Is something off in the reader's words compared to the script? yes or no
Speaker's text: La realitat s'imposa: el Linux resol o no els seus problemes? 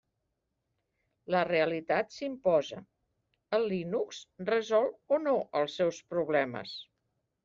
no